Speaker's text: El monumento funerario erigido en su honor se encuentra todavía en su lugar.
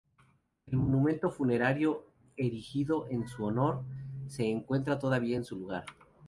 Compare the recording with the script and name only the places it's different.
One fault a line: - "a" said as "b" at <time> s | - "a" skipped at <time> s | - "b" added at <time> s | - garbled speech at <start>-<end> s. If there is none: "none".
none